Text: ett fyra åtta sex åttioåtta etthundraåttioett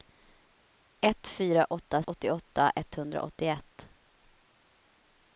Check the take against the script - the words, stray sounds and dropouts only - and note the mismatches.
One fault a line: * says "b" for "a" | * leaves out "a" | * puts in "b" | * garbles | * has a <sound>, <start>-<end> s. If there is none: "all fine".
* leaves out "sex"